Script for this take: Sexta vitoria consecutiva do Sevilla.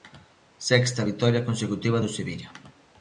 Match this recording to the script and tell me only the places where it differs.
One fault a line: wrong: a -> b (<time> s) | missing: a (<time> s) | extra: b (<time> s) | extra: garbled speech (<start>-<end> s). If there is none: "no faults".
no faults